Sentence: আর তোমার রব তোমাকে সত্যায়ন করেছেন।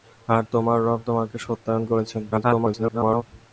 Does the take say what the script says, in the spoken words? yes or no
no